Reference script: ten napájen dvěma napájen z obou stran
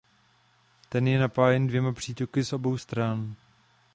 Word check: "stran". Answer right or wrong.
right